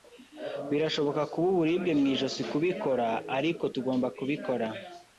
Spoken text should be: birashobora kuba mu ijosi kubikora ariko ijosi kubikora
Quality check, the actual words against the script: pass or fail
fail